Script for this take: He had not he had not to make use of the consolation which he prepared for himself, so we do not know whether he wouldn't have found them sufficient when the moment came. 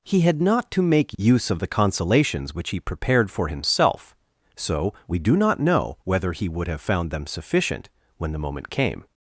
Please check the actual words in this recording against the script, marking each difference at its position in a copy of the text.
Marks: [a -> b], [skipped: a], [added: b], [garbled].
He had not [skipped: he had not] to make use of the [consolation -> consolations] which he prepared for himself, so we do not know whether he [wouldn't -> would] have found them sufficient when the moment came.